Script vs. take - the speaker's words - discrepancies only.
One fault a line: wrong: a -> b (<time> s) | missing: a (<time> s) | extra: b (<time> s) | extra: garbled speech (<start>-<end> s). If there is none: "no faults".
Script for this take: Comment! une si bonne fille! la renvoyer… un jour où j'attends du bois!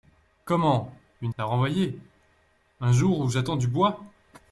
missing: si bonne fille (1.3 s)